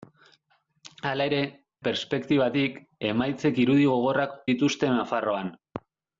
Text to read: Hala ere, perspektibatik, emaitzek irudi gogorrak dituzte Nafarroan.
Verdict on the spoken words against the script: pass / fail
pass